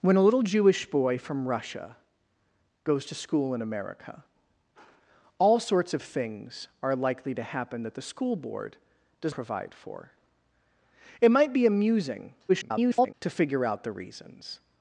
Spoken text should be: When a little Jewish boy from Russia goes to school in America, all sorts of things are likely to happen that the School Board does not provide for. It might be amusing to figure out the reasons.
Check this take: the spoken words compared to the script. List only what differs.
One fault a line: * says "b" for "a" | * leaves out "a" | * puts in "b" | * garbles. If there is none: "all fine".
* leaves out "not"
* garbles